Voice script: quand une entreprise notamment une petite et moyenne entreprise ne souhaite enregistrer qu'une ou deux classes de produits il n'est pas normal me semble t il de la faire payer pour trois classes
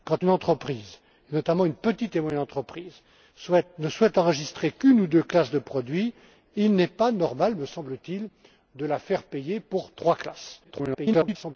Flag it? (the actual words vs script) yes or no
yes